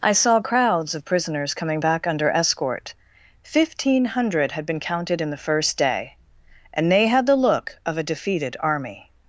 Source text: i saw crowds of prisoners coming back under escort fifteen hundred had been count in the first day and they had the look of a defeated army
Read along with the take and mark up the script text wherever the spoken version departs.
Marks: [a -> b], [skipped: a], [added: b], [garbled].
i saw crowds of prisoners coming back under escort fifteen hundred had been [count -> counted] in the first day and they had the look of a defeated army